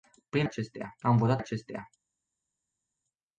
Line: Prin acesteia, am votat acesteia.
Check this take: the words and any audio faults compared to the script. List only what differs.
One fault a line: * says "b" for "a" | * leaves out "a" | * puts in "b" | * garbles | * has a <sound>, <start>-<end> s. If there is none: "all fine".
all fine